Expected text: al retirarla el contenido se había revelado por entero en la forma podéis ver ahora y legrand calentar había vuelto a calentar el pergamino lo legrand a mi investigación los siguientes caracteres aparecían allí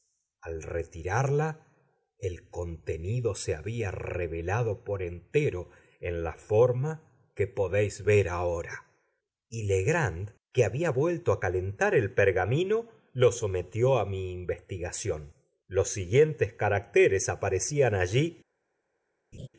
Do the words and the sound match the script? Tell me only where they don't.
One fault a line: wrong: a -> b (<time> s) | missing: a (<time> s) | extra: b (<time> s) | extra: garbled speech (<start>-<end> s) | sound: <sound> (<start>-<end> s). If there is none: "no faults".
extra: que (7.3 s)
wrong: calentar -> que (10.5 s)
wrong: legrand -> sometió (13.3 s)
sound: laugh (19.3-19.5 s)